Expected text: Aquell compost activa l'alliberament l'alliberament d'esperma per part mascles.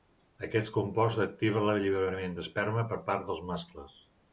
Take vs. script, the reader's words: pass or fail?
fail